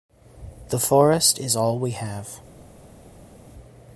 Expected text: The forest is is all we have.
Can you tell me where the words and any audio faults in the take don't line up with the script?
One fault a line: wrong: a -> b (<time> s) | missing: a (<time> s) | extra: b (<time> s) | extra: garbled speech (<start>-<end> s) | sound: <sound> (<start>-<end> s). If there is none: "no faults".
missing: is (1.6 s)